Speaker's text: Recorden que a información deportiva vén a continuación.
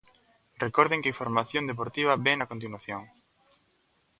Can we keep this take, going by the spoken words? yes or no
yes